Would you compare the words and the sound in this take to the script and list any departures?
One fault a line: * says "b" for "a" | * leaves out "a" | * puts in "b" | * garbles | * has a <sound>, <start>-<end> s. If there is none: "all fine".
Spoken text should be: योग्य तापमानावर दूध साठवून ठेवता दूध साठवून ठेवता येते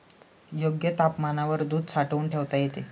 * leaves out "दूध साठवून ठेवता"